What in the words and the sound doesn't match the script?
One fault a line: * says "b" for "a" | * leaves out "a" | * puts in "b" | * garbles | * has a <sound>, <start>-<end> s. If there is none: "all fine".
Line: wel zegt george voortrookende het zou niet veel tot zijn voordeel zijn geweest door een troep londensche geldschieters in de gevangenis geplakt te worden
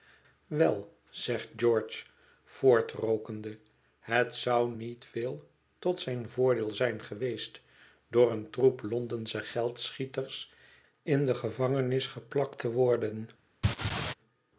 * has a laugh, 13.6-14.1 s